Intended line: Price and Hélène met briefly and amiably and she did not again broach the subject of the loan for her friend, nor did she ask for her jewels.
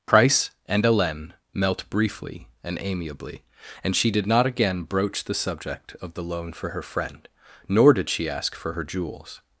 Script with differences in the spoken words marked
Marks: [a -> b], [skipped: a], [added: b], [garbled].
Price and Hélène [met -> melt] briefly and amiably and she did not again broach the subject of the loan for her friend, nor did she ask for her jewels.